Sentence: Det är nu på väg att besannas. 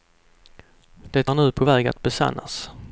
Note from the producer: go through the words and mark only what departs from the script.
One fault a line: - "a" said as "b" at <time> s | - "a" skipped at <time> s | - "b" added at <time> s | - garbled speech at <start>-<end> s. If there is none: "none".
none